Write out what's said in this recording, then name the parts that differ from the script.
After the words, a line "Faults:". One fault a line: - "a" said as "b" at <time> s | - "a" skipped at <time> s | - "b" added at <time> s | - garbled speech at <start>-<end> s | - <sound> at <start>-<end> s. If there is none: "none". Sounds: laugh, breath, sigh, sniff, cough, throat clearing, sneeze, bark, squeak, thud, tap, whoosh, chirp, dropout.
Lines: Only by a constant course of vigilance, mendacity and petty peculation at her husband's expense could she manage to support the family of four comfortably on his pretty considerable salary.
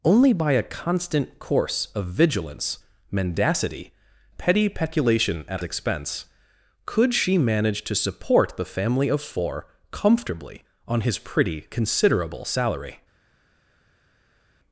Only by a constant course of vigilance, mendacity petty peculation at expense could she manage to support the family of four comfortably on his pretty considerable salary.
Faults:
- "and" skipped at 3.9 s
- "her husband's" skipped at 5.6 s